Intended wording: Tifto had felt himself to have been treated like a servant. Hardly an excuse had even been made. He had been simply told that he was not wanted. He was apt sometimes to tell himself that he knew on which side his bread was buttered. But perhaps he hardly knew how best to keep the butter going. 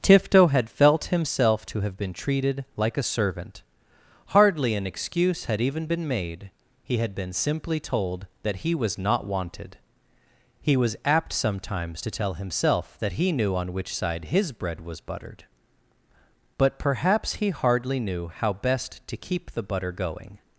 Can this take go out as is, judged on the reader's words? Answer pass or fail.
pass